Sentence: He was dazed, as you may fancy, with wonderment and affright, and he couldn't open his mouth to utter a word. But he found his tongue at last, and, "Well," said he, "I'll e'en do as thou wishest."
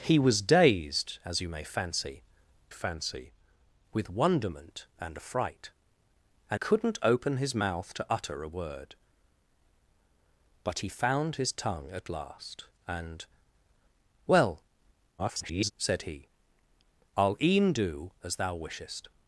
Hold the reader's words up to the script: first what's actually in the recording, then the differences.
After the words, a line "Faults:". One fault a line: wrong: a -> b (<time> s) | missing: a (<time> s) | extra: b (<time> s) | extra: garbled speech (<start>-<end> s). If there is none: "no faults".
He was dazed, as you may fancy fancy, with wonderment and affright, and couldn't open his mouth to utter a word. But he found his tongue at last, and, "Well," [garbled] said he, "I'll e'en do as thou wishest."
Faults:
extra: fancy (2.7 s)
missing: he (6.6 s)
extra: garbled speech (15.2-15.7 s)